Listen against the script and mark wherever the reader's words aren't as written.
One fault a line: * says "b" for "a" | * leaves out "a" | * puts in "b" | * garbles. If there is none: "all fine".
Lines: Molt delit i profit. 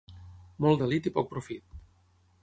* puts in "poc"